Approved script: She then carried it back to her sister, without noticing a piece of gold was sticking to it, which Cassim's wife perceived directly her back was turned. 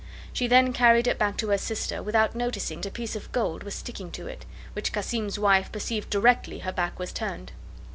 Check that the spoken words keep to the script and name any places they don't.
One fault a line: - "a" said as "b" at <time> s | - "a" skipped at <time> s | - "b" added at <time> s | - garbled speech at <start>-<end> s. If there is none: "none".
none